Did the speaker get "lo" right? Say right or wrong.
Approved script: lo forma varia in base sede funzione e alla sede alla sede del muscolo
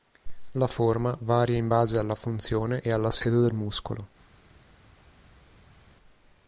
wrong